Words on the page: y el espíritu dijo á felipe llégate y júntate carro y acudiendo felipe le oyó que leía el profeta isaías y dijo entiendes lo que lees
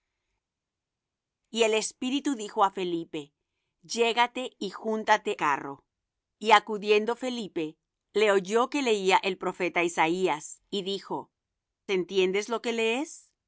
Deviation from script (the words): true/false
false